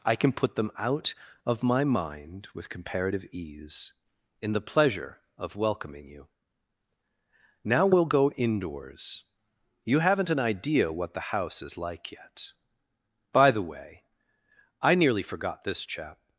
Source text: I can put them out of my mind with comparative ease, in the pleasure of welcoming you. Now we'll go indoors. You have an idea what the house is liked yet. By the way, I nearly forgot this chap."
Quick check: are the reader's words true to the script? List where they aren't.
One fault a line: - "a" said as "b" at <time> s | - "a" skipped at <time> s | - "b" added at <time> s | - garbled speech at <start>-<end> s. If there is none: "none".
- "have" said as "haven't" at 10.0 s
- "liked" said as "like" at 11.8 s